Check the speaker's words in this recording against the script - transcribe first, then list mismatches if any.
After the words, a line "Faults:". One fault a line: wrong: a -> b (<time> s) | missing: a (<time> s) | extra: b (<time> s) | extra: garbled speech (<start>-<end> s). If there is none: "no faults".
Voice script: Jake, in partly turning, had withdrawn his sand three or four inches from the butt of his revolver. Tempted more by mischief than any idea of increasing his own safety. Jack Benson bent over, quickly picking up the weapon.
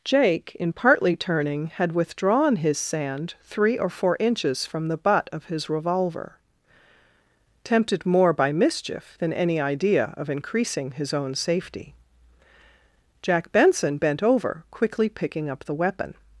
Jake, in partly turning, had withdrawn his sand three or four inches from the butt of his revolver. Tempted more by mischief than any idea of increasing his own safety. Jack Benson bent over, quickly picking up the weapon.
Faults:
no faults